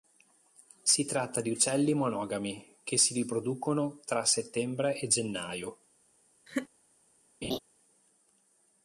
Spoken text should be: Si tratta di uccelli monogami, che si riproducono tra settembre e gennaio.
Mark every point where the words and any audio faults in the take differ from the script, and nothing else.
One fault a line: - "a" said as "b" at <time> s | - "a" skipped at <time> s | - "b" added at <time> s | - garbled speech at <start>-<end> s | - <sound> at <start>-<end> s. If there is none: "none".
- laugh at 6.5-6.7 s
- laugh at 7.4-7.6 s